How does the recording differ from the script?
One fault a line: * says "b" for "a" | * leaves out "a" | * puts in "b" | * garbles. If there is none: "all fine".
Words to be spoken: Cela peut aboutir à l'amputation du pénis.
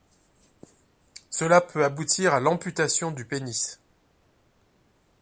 all fine